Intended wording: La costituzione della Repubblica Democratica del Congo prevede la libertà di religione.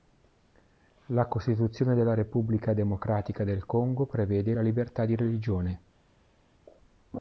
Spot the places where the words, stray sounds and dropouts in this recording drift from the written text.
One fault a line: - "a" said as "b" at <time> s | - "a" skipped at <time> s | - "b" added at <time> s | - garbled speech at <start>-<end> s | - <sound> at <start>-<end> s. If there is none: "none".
none